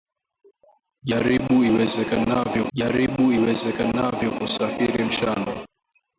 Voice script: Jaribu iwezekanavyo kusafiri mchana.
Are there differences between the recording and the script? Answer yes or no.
yes